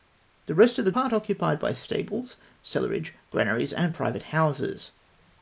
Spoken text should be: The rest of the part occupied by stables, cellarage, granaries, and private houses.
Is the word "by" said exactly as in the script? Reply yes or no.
yes